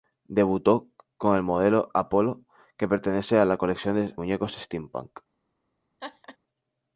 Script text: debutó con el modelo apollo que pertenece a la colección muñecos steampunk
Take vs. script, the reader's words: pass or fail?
pass